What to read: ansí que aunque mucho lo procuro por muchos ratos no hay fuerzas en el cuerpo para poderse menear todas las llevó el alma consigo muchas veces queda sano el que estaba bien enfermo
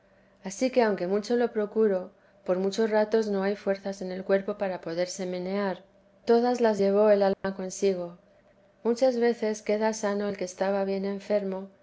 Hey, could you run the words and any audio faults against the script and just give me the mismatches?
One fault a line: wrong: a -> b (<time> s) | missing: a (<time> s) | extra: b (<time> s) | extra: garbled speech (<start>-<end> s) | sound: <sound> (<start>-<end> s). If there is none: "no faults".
sound: dropout (7.3-7.4 s)